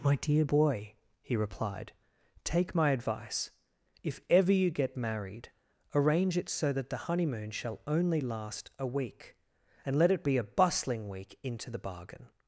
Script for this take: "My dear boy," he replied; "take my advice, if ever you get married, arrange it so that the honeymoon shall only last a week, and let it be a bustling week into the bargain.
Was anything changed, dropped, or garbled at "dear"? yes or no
no